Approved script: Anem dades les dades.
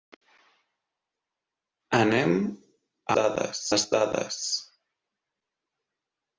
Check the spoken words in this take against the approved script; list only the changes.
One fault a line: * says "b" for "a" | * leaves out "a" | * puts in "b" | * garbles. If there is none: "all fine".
all fine